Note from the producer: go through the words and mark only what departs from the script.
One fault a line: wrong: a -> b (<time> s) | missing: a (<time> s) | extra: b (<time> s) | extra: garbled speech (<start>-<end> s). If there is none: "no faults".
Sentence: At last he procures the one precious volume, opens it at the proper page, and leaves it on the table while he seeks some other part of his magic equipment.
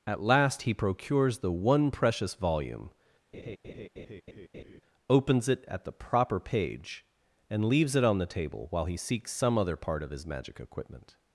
no faults